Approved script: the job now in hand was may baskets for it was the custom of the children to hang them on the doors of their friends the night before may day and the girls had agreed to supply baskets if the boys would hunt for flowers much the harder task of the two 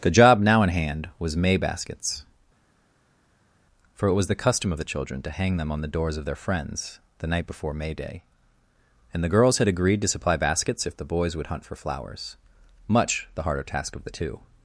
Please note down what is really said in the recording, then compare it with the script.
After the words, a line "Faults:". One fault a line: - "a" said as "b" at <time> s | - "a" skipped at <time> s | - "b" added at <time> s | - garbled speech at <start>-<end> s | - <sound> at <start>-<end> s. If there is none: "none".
the job now in hand was may baskets for it was the custom of the children to hang them on the doors of their friends the night before may day and the girls had agreed to supply baskets if the boys would hunt for flowers much the harder task of the two
Faults:
none